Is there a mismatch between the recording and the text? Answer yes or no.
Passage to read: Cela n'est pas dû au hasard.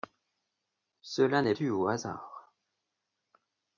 yes